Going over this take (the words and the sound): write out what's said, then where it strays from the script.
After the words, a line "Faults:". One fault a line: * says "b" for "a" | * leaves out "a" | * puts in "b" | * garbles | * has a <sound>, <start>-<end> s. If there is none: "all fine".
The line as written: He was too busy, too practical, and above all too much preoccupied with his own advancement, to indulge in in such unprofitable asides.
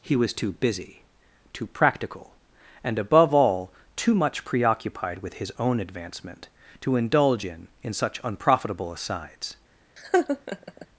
He was too busy, too practical, and above all too much preoccupied with his own advancement, to indulge in in such unprofitable asides.
Faults:
* has a laugh, 10.0-10.9 s